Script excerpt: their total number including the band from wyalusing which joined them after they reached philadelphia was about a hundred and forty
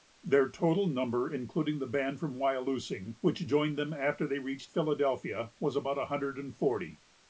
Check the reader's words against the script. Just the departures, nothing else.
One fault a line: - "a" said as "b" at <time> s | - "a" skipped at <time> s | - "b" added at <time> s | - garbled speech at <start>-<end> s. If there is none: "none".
none